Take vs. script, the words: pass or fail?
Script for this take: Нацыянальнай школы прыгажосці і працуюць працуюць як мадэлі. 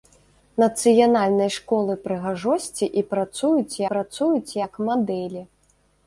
pass